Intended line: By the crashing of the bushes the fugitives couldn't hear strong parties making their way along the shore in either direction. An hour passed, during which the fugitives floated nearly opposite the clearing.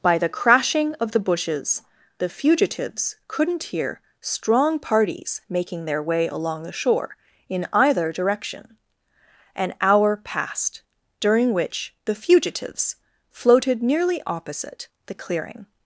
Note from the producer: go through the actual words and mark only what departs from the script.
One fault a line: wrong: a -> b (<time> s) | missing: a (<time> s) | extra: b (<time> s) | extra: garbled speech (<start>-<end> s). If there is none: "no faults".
no faults